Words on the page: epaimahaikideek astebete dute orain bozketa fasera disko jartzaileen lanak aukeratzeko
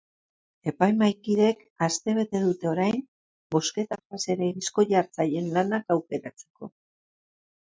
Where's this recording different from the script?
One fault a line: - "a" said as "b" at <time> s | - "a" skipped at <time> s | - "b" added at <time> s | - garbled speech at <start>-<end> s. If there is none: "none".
none